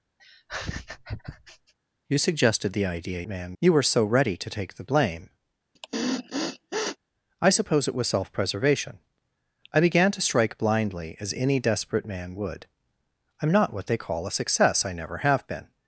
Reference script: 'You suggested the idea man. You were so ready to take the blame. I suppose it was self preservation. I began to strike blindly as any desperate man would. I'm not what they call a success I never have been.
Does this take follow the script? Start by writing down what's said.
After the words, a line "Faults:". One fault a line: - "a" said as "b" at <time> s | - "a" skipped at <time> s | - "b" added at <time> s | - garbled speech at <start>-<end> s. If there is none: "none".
'You suggested the idea man. You were so ready to take the blame. I suppose it was self preservation. I began to strike blindly as any desperate man would. I'm not what they call a success I never have been.
Faults:
none